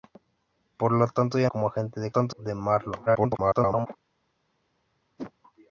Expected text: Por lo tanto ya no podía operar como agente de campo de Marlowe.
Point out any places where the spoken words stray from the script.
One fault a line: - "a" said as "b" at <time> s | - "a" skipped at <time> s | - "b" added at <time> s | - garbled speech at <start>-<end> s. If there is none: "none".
- "no podía operar" skipped at 1.5 s
- "campo" said as "tanto" at 2.1 s
- garbled speech at 3.1-3.9 s